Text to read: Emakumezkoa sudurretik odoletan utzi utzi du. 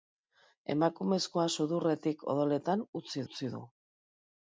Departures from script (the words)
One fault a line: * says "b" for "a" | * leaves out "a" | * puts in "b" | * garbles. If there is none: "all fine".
all fine